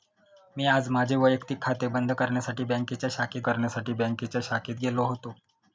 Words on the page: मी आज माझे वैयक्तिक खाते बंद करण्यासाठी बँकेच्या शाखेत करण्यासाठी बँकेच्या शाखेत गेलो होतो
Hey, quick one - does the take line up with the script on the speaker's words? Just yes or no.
yes